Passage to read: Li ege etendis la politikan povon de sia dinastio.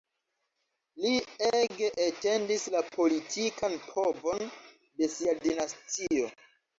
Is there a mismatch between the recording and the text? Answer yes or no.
no